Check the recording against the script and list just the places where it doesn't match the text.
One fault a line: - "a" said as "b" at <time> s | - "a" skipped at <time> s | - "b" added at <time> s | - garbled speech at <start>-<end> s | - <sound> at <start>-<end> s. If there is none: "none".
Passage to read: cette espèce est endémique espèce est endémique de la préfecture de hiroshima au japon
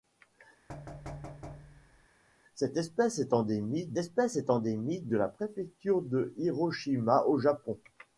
- thud at 0.7-2.1 s